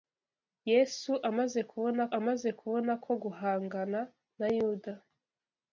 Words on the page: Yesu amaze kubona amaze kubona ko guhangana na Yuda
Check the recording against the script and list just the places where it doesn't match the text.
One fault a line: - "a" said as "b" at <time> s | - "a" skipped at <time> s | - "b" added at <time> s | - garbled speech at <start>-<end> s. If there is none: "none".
none